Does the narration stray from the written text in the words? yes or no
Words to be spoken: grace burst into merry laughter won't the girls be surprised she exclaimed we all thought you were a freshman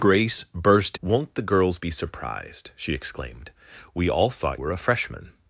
yes